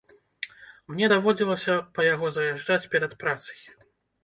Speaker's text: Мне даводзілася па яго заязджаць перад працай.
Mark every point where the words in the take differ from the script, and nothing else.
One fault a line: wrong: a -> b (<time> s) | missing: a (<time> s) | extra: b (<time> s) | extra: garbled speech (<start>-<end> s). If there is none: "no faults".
no faults